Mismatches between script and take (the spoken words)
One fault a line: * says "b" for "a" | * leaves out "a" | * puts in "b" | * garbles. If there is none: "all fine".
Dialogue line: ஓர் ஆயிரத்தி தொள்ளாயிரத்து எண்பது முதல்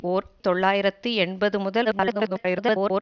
* leaves out "ஆயிரத்தி"
* garbles